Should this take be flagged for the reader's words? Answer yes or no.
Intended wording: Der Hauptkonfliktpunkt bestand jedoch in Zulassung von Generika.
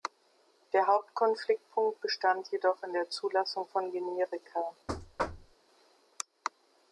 yes